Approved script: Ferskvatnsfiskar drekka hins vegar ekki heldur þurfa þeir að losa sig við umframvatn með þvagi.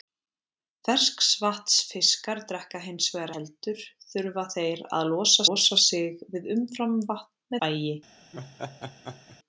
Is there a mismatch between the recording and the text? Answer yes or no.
yes